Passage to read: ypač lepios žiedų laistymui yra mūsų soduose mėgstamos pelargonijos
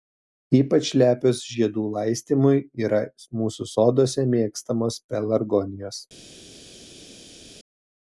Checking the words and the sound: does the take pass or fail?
pass